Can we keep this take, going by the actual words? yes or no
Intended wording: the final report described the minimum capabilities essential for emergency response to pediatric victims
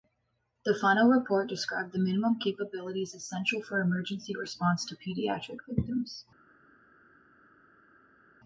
yes